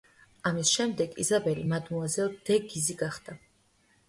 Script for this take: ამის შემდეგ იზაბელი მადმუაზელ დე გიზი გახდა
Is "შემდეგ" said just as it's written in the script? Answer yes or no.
yes